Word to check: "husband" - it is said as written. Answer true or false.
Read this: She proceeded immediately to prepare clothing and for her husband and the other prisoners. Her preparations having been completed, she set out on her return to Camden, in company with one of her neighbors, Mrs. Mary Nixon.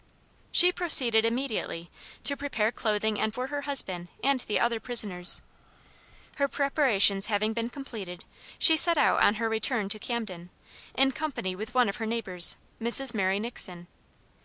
true